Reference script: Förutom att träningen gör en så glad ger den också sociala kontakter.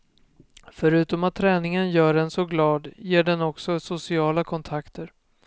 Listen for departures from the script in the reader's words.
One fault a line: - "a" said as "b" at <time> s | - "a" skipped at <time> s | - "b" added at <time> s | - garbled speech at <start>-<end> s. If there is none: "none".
none